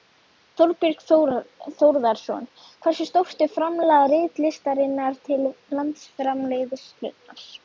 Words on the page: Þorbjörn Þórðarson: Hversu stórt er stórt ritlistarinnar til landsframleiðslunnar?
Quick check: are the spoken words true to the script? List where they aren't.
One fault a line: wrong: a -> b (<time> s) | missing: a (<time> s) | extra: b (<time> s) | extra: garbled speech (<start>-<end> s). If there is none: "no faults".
wrong: stórt -> framlag (3.6 s)